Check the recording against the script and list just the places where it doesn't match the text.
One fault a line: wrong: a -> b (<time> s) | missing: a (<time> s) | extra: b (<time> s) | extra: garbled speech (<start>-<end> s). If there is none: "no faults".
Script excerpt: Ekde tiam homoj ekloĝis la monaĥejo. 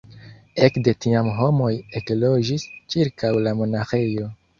extra: ĉirkaŭ (3.0 s)